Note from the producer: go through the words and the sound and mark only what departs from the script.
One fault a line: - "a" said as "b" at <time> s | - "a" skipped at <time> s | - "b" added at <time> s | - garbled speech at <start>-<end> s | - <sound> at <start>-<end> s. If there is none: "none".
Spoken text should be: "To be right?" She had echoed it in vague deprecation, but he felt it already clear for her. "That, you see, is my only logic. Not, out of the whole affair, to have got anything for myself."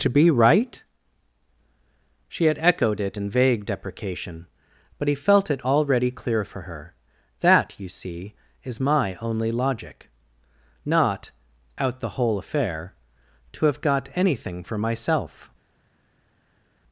- "of" skipped at 12.0 s